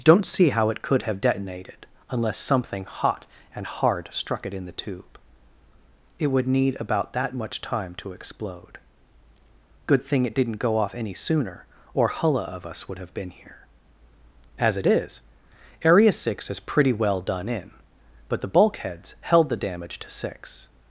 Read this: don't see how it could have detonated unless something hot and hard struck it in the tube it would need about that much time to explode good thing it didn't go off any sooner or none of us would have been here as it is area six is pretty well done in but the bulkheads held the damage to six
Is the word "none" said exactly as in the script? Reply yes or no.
no